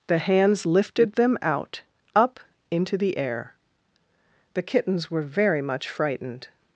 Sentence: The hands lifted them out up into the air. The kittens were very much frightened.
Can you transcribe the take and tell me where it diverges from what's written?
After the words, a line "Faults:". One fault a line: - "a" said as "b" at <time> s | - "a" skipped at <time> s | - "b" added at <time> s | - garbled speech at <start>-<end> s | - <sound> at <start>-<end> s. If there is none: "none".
The hands lifted them out up into the air. The kittens were very much frightened.
Faults:
none